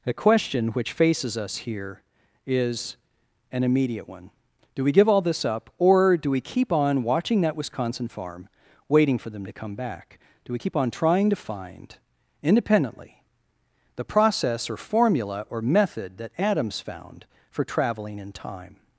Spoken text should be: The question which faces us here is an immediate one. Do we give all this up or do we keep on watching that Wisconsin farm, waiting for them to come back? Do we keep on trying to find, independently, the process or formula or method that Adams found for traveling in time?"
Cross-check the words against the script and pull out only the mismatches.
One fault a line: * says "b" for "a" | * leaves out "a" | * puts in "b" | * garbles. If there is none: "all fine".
all fine